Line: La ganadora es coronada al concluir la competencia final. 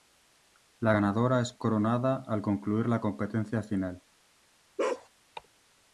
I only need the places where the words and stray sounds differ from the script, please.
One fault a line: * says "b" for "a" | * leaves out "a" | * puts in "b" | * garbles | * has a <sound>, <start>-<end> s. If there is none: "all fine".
* has a bark, 4.8-5.1 s